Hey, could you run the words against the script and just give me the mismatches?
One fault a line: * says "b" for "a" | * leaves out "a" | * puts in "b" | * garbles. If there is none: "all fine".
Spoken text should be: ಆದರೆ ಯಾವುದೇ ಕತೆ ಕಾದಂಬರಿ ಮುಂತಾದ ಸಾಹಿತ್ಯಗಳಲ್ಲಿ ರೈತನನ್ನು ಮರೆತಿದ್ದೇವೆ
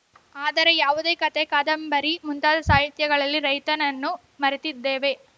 all fine